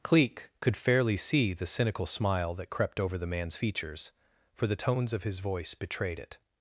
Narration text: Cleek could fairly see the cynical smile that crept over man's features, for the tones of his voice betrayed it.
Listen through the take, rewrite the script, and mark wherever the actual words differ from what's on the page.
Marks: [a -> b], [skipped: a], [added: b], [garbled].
Cleek could fairly see the cynical smile that crept over [added: the] man's features, for the tones of his voice betrayed it.